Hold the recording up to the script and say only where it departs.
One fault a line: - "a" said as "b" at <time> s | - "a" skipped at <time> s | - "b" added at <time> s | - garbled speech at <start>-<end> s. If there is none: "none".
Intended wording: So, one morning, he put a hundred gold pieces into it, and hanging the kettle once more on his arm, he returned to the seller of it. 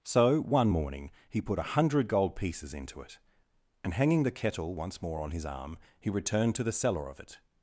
none